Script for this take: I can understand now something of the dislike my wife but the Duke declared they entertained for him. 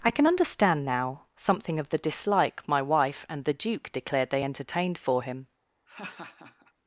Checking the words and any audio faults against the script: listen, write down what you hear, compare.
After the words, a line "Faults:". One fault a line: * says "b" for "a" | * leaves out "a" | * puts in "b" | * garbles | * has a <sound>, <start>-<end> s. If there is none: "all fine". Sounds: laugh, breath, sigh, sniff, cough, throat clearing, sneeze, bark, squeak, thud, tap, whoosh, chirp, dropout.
I can understand now something of the dislike my wife and the Duke declared they entertained for him.
Faults:
* says "and" for "but"
* has a laugh, 5.9-6.7 s